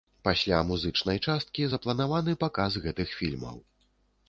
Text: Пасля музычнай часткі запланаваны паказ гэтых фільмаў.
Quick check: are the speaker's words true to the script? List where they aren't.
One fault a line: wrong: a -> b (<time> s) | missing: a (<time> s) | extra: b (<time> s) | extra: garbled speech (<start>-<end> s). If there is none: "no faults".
no faults